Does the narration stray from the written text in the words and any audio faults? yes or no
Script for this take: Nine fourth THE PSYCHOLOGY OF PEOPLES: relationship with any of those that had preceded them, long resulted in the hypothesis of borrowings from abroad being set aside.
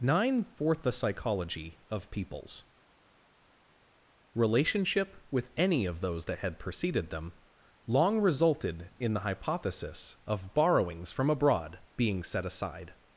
no